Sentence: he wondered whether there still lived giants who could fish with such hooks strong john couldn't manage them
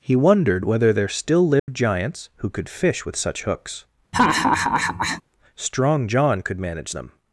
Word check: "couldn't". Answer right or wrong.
wrong